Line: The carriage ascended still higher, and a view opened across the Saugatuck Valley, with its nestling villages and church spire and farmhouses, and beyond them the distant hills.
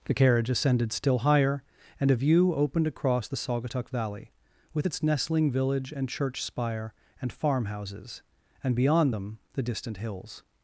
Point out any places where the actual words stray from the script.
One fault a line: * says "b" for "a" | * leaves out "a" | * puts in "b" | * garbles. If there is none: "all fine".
* says "village" for "villages"